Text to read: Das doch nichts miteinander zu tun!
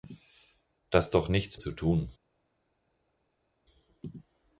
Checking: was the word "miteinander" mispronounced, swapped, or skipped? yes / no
yes